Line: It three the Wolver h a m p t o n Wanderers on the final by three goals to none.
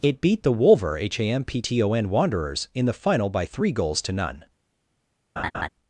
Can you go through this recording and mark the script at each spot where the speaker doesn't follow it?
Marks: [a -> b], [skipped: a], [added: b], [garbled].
It [three -> beat] the Wolver h a m p t o n Wanderers [on -> in] the final by three goals to none.